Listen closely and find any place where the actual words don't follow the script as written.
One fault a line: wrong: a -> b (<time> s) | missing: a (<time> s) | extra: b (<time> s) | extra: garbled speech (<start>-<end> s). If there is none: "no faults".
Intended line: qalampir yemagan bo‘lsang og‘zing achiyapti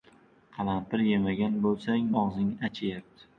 no faults